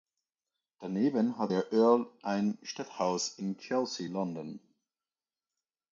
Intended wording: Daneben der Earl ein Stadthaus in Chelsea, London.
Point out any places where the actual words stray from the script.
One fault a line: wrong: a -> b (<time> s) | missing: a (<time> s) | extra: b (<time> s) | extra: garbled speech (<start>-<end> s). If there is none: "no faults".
extra: hat (1.4 s)